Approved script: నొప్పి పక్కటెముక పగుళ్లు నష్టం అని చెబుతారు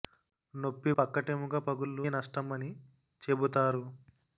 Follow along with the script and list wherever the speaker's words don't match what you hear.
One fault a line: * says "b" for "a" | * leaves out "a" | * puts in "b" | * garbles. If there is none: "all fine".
all fine